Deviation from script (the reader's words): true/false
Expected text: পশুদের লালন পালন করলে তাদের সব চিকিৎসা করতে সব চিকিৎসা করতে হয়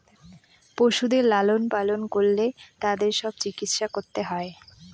true